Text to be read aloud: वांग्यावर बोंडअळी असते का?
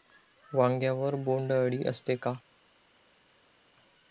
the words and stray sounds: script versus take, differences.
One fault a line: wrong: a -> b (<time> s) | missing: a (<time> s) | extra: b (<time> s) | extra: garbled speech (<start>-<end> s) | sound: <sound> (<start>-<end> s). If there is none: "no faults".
no faults